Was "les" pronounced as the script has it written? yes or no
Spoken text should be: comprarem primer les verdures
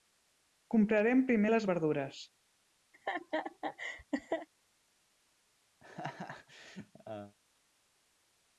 yes